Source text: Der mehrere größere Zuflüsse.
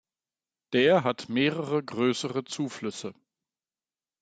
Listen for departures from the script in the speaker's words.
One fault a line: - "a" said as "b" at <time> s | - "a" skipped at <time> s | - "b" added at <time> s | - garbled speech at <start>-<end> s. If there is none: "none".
- "hat" added at 1.0 s